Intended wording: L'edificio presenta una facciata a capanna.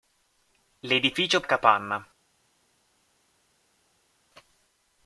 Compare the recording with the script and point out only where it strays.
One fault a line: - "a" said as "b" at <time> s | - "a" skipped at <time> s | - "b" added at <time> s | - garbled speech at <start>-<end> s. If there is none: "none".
- "presenta una facciata" skipped at 1.4 s